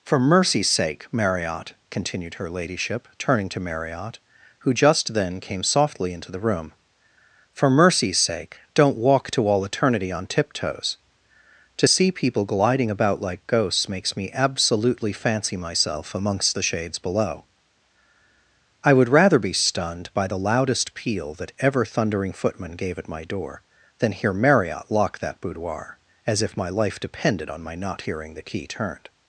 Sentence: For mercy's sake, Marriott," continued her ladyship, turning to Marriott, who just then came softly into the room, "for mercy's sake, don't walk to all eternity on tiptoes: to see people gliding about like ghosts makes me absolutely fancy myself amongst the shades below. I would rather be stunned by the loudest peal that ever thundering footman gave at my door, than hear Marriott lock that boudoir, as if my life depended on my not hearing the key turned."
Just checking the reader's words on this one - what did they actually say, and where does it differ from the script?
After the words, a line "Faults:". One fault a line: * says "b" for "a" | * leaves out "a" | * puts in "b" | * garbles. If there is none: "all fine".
For mercy's sake, Marriott," continued her ladyship, turning to Marriott, who just then came softly into the room, "for mercy's sake, don't walk to all eternity on tiptoes: to see people gliding about like ghosts makes me absolutely fancy myself amongst the shades below. I would rather be stunned by the loudest peal that ever thundering footman gave at my door, than hear Marriott lock that boudoir, as if my life depended on my not hearing the key turned."
Faults:
all fine